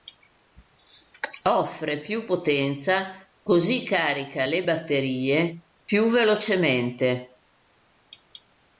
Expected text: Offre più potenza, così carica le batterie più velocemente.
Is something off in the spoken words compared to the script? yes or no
no